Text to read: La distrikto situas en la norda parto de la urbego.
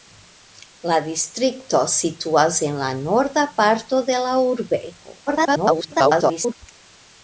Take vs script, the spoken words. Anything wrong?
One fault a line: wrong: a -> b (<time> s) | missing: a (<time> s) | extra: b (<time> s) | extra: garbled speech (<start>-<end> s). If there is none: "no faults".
extra: garbled speech (5.3-6.5 s)